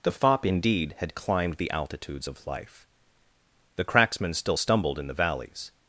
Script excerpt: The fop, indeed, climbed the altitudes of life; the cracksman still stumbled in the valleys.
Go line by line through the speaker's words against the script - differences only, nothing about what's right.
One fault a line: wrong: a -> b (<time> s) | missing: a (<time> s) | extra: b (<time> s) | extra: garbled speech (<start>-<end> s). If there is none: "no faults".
extra: had (1.0 s)